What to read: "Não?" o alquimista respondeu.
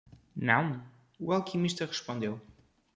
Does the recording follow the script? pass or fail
pass